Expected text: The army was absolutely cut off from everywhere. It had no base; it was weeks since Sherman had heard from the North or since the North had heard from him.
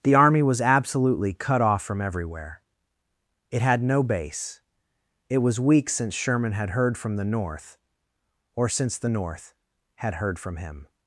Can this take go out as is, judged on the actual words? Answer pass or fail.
pass